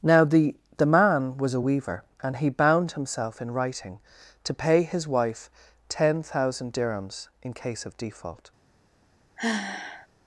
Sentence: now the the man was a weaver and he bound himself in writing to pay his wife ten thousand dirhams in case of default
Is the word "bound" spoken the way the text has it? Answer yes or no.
yes